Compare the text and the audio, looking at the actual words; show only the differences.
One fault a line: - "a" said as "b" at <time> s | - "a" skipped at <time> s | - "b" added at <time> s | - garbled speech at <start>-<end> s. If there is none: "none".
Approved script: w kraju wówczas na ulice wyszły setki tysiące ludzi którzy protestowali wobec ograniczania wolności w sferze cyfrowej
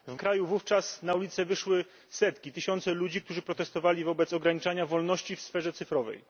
none